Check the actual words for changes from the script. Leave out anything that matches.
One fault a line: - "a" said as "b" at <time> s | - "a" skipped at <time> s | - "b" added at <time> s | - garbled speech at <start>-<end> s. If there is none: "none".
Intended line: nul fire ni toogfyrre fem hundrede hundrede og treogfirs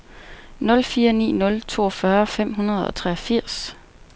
- "nul" added at 1.4 s
- "hundrede" skipped at 2.9 s